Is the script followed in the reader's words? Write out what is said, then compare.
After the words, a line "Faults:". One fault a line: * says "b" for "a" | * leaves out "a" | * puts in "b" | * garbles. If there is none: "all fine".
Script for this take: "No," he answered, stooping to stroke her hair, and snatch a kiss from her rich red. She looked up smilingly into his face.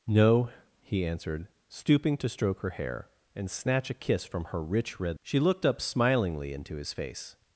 "No," he answered, stooping to stroke her hair, and snatch a kiss from her rich red. She looked up smilingly into his face.
Faults:
all fine